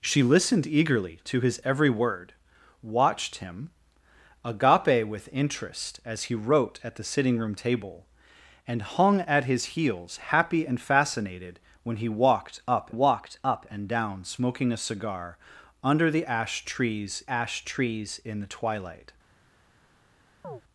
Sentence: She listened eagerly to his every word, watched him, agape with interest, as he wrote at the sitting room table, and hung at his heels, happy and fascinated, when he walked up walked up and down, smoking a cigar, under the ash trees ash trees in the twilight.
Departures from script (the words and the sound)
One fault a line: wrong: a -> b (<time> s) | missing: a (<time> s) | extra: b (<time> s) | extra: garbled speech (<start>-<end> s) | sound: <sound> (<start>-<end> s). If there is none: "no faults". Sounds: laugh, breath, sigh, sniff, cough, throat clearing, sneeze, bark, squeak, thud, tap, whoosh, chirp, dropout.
sound: chirp (20.4-20.6 s)